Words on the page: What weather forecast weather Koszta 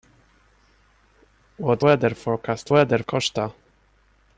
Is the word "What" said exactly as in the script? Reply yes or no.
yes